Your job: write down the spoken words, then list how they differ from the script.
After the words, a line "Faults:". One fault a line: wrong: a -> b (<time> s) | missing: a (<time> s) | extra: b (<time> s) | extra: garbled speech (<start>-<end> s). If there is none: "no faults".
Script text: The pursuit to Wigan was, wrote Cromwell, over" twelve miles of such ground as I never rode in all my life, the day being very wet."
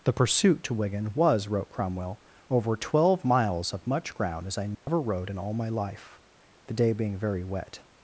The pursuit to Wigan was, wrote Cromwell, over" twelve miles of much ground as I never rode in all my life, the day being very wet."
Faults:
wrong: such -> much (3.9 s)